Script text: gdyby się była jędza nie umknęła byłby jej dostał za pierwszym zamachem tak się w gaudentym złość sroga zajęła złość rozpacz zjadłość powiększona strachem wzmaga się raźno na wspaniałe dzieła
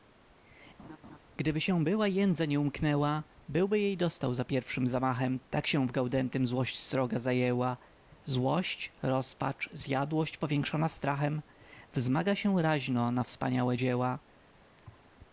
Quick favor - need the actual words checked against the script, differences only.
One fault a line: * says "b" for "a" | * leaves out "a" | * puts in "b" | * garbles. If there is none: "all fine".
all fine